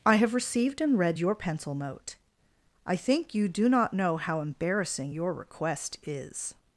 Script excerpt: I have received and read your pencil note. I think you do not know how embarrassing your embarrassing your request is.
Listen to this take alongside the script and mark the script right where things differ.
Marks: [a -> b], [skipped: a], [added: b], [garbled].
I have received and read your pencil note. I think you do not know how embarrassing your [skipped: embarrassing your] request is.